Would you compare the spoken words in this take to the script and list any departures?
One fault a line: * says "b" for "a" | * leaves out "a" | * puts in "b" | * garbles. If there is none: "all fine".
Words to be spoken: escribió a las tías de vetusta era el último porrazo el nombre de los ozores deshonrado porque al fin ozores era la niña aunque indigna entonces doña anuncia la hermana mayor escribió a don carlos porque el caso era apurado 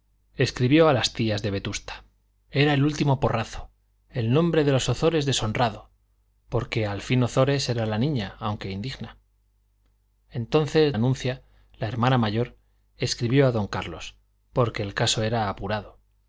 * leaves out "doña"